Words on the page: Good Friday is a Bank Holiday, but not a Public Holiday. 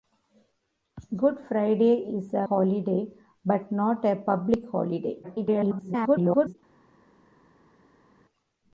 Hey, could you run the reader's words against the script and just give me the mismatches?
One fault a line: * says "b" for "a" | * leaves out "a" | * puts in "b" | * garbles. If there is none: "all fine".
* leaves out "Bank"
* garbles